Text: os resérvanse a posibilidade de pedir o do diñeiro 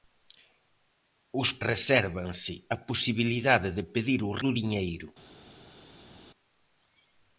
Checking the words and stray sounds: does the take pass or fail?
pass